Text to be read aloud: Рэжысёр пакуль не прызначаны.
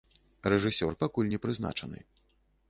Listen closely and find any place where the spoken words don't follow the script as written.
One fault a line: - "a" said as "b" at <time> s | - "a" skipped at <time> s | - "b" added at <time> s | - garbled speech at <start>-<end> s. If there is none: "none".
none